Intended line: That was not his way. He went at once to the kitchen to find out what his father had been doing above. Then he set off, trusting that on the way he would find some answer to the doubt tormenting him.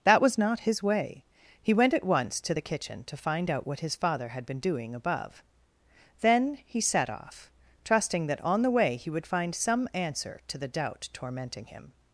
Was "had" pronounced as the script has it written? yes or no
yes